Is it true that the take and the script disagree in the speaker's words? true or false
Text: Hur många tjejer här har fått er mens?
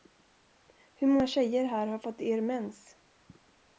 false